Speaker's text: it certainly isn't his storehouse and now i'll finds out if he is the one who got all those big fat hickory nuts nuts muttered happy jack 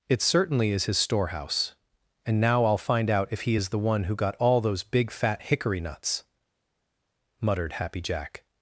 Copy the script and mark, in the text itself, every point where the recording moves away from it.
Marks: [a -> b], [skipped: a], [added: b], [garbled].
it certainly [isn't -> is] his storehouse and now i'll [finds -> find] out if he is the one who got all those big fat hickory nuts [skipped: nuts] muttered happy jack